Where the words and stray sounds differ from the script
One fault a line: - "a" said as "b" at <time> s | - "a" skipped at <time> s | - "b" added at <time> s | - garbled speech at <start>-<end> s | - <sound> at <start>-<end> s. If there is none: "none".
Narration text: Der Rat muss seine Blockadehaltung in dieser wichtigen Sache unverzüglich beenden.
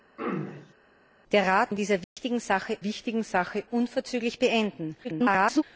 - throat clearing at 0.2-0.7 s
- "muss seine Blockadehaltung in dieser" said as "in dieser wichtigen Sache" at 1.7 s
- dropout at 2.0-2.2 s
- garbled speech at 5.0-5.6 s